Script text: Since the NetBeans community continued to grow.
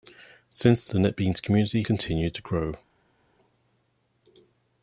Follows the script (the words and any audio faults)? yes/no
yes